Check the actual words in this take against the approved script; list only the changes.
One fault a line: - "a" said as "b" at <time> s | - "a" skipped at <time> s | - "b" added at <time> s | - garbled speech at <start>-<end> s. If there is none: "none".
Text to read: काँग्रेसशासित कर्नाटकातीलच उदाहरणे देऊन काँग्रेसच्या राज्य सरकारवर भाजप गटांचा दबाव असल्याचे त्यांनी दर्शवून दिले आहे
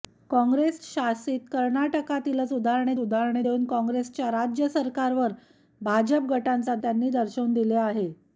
- "उदाहरणे" added at 3.0 s
- "दबाव असल्याचे" skipped at 6.7 s